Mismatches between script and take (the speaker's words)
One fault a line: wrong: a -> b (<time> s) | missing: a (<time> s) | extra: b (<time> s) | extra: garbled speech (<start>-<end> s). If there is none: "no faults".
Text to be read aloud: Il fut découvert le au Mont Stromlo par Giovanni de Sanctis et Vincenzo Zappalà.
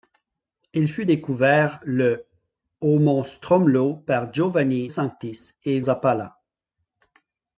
missing: de (4.9 s)
missing: Vincenzo (5.8 s)